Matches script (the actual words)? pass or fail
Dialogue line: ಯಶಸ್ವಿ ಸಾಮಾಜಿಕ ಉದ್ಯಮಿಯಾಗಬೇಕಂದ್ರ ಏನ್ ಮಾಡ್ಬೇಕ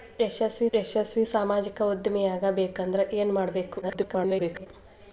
fail